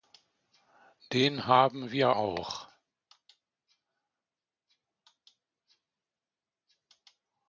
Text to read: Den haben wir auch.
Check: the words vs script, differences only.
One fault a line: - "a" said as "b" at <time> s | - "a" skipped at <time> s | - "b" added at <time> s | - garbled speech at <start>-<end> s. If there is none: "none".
none